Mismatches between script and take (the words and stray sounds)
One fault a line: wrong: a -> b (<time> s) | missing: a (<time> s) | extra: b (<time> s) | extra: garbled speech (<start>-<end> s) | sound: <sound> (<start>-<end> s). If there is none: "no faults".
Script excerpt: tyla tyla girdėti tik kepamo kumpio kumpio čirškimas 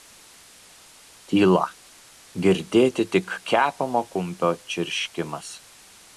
missing: tyla (1.7 s)
missing: kumpio (4.5 s)